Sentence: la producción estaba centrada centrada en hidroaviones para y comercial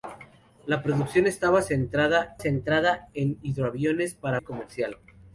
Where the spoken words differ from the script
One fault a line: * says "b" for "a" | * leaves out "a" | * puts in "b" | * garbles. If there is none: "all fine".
all fine